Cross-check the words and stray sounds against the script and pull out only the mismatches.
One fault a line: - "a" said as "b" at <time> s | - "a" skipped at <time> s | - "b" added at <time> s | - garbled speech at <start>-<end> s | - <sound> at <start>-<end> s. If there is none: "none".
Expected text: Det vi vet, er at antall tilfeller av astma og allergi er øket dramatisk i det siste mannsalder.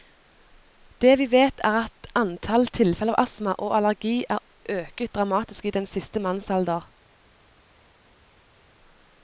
- "det" said as "den" at 5.8 s